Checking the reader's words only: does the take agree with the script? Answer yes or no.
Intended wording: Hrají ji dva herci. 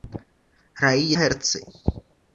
no